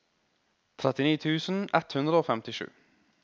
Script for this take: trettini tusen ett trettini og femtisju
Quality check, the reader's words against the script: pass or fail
fail